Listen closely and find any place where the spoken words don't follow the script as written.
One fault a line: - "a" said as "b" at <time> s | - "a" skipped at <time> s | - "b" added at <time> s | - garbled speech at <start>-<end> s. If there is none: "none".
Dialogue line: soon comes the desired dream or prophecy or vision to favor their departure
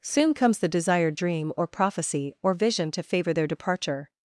none